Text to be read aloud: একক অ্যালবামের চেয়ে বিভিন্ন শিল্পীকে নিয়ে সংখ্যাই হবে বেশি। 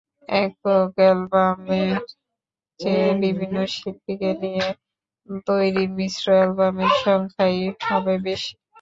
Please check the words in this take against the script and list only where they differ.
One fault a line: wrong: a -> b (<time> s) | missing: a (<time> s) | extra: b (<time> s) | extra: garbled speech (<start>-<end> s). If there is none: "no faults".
extra: তৈরি মিশ্র অ্যালবামের (5.5 s)